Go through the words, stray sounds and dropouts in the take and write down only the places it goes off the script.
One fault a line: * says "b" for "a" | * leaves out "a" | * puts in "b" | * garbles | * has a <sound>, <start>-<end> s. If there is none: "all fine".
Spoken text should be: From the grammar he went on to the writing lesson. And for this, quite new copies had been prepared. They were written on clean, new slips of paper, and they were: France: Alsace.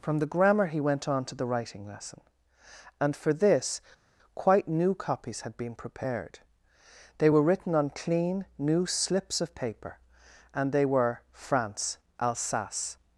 all fine